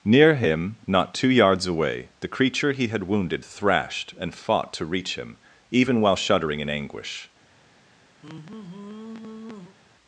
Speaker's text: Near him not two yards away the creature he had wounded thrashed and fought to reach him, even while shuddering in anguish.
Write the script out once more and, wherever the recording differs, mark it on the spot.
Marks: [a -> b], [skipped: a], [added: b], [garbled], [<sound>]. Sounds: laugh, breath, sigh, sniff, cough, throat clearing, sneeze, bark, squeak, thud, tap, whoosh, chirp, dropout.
Near him not two yards away the creature he had wounded thrashed and fought to reach him, even while shuddering in anguish. [sigh]